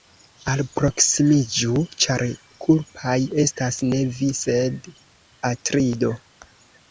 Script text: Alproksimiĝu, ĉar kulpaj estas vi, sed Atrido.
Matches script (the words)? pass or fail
fail